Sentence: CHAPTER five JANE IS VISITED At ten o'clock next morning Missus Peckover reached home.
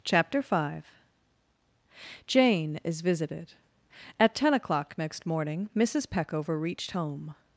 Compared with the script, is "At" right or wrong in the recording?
right